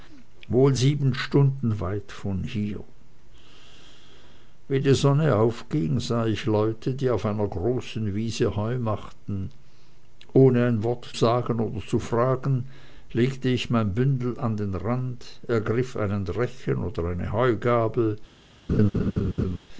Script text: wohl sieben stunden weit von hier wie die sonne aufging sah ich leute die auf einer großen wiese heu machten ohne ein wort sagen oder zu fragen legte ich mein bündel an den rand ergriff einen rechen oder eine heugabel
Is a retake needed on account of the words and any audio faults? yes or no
yes